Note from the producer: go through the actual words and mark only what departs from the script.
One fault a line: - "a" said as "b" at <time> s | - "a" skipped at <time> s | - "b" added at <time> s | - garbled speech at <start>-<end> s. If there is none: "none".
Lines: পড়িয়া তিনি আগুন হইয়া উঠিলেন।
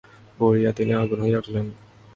none